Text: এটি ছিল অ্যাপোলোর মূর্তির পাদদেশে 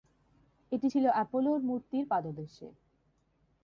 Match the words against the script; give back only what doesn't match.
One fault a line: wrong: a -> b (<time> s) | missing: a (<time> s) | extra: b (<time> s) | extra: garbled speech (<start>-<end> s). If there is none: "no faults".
no faults